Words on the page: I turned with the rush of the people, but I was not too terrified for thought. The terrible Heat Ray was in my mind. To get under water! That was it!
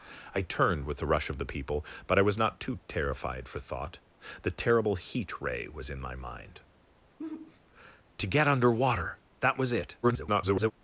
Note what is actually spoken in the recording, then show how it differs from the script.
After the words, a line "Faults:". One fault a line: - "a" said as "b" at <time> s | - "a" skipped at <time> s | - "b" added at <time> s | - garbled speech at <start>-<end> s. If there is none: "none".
I turned with the rush of the people, but I was not too terrified for thought. The terrible Heat Ray was in my mind. To get under water! That was it! [garbled]
Faults:
- garbled speech at 10.0-10.7 s